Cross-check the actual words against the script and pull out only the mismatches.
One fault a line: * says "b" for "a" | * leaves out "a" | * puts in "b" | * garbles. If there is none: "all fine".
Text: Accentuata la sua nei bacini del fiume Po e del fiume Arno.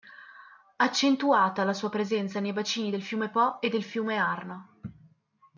* puts in "presenza"